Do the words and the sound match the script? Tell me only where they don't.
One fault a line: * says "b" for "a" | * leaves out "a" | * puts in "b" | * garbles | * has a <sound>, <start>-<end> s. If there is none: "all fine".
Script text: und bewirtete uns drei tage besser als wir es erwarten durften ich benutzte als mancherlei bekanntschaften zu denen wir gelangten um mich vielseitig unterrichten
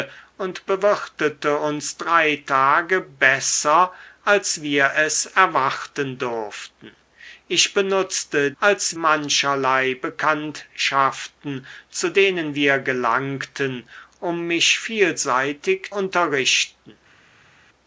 all fine